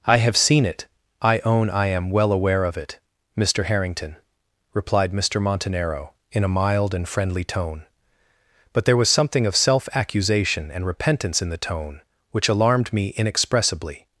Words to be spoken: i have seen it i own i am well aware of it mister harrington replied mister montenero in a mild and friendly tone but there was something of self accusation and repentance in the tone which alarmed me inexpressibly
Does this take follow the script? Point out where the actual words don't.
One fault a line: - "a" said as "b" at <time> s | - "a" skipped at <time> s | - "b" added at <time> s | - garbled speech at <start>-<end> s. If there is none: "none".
none